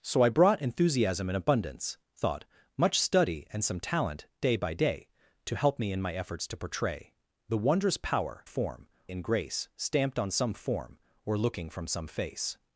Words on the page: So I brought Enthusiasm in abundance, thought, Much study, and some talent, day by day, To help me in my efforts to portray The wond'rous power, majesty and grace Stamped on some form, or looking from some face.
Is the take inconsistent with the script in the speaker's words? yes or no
yes